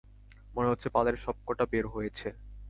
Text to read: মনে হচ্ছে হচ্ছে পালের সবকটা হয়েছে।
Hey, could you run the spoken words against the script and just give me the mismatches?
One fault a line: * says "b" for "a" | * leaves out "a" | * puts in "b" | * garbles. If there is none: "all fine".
* leaves out "হচ্ছে"
* puts in "বের"